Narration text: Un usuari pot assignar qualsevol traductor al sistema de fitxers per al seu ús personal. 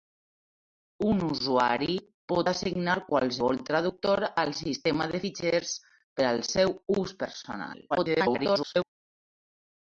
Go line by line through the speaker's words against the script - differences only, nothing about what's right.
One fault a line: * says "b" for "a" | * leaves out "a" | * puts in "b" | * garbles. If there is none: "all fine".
* garbles